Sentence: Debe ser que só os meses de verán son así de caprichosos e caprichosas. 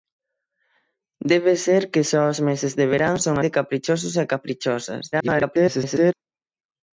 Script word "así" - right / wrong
wrong